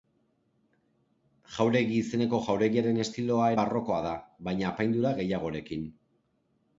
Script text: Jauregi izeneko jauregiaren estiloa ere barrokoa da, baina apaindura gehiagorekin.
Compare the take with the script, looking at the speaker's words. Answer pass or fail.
fail